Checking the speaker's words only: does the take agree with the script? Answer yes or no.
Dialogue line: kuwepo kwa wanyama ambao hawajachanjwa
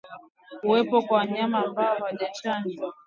yes